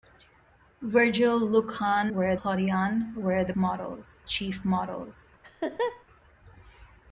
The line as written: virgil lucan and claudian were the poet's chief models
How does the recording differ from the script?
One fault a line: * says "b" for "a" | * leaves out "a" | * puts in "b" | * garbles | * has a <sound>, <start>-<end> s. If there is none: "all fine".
* says "were" for "and"
* says "models" for "poet's"
* has a laugh, 5.4-6.0 s